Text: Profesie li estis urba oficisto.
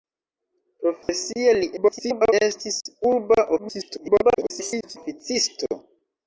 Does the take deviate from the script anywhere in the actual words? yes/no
yes